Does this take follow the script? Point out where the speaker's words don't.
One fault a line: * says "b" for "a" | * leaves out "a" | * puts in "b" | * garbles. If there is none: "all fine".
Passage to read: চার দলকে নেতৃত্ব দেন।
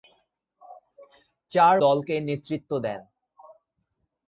all fine